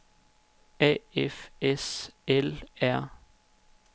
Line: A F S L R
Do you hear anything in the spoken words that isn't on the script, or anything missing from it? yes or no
no